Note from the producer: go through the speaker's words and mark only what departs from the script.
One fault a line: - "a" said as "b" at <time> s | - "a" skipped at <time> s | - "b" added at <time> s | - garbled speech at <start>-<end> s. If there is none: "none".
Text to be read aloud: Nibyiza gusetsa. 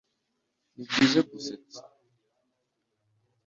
none